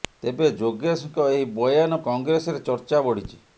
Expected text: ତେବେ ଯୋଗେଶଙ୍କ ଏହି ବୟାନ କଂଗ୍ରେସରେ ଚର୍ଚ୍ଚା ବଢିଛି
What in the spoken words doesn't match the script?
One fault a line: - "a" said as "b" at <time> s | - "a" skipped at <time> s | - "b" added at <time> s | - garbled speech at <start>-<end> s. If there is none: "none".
none